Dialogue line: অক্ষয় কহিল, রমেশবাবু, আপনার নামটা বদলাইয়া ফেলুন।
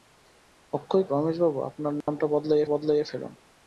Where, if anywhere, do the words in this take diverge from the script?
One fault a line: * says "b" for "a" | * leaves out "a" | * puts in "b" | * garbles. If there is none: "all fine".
* leaves out "কহিল"
* puts in "বদলাইয়া"